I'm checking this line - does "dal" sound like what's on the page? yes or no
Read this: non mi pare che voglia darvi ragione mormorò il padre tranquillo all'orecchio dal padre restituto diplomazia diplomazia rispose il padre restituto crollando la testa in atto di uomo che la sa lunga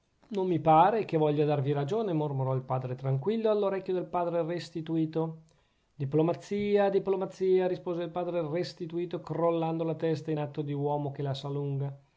no